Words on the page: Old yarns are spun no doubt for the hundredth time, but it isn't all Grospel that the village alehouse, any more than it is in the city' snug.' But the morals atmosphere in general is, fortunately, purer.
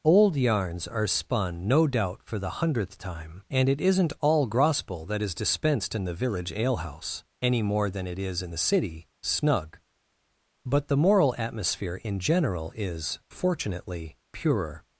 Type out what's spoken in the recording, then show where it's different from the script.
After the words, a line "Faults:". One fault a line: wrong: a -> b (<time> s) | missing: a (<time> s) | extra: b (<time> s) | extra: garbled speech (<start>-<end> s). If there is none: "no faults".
Old yarns are spun no doubt for the hundredth time, and it isn't all Grospel that is dispensed in the village alehouse, any more than it is in the city' snug.' But the moral atmosphere in general is, fortunately, purer.
Faults:
wrong: but -> and (3.5 s)
extra: is dispensed in (5.2 s)
wrong: morals -> moral (11.0 s)